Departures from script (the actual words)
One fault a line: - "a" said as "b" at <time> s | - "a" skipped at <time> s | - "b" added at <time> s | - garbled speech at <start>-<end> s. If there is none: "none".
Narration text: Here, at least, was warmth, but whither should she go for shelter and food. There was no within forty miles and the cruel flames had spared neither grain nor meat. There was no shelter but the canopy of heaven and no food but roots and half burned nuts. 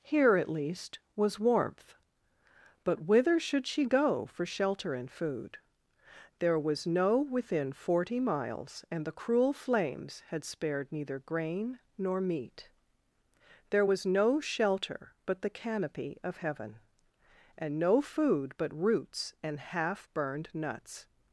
none